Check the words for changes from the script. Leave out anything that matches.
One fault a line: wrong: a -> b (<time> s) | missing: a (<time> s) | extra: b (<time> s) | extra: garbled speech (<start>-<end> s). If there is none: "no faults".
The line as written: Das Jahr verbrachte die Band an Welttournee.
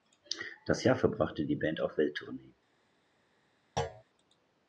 wrong: an -> auf (1.8 s)